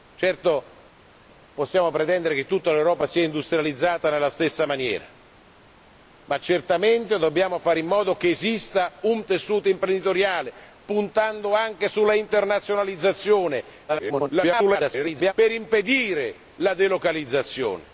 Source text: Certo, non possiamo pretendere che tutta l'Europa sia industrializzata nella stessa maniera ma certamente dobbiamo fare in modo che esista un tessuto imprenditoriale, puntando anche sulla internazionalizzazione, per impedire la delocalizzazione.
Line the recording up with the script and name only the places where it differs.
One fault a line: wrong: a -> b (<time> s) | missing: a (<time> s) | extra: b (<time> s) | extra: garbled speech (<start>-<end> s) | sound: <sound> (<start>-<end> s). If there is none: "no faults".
missing: non (0.7 s)
extra: garbled speech (13.9-15.3 s)